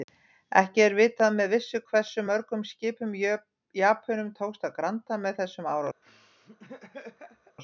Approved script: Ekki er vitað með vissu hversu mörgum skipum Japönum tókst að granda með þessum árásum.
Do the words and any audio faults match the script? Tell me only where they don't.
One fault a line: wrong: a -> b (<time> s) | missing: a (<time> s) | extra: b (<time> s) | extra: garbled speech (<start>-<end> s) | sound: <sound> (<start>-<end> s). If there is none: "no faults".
sound: laugh (6.0-7.6 s)